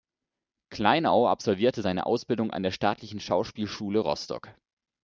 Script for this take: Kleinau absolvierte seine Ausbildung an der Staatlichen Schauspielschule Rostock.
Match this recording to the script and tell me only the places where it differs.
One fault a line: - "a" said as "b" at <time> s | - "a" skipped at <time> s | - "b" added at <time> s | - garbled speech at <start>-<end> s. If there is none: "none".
none